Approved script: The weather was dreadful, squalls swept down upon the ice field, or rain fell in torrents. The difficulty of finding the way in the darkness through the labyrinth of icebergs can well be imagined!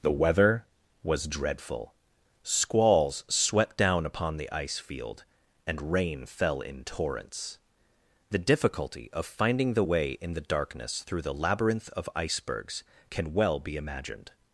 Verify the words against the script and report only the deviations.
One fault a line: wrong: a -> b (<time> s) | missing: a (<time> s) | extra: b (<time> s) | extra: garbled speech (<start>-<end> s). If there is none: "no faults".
wrong: or -> and (5.7 s)